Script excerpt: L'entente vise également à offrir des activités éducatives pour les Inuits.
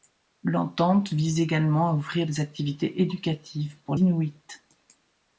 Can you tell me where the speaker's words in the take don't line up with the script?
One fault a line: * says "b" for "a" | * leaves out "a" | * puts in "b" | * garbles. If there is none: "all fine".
* leaves out "les"